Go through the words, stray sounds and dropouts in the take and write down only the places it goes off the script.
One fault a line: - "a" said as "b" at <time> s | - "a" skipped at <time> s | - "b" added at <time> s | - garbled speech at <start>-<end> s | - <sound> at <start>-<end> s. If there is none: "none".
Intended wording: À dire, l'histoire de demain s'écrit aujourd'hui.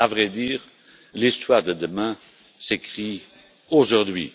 - "vrai" added at 0.1 s